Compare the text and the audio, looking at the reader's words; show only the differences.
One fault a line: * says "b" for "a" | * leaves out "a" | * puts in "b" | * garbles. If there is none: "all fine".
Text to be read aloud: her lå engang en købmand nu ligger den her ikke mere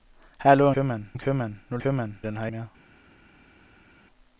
* says "købmand" for "engang"
* says "købmand" for "ligger"
* leaves out "ikke"